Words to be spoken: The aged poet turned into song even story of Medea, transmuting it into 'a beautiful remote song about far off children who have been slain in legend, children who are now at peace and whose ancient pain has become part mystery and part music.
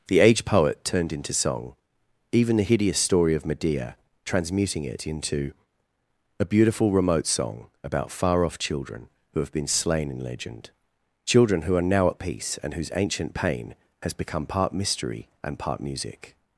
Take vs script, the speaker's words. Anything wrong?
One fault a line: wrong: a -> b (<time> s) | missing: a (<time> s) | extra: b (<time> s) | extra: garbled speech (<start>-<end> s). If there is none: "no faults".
extra: the hideous (2.5 s)